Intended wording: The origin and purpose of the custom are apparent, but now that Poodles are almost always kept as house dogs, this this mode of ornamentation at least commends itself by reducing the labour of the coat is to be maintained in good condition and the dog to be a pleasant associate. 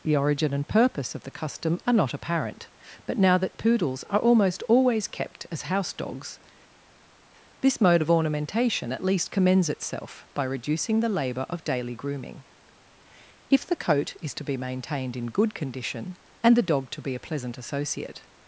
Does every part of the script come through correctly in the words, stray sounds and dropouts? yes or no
no